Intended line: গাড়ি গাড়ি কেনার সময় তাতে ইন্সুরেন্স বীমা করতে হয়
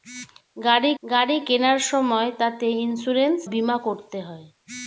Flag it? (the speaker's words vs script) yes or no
no